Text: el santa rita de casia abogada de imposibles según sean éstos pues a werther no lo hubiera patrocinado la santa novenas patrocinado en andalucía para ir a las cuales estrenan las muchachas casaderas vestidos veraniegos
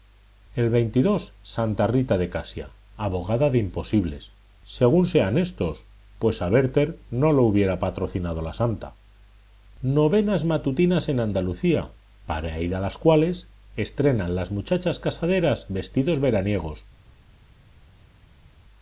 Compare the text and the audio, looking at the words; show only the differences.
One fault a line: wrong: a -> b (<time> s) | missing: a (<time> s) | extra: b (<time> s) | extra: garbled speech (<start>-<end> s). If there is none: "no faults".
wrong: patrocinado -> matutinas (10.4 s)